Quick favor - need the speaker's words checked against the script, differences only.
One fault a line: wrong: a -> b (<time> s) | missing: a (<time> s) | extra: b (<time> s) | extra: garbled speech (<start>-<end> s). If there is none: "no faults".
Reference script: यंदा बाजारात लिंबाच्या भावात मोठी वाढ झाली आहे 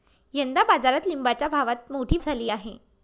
missing: वाढ (2.2 s)